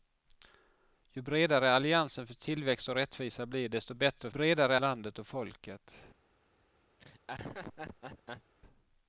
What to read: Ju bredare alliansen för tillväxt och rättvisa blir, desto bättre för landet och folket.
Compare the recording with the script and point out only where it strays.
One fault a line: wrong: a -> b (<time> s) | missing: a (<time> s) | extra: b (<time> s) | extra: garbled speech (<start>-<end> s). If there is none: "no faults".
wrong: för -> bredare (4.3 s)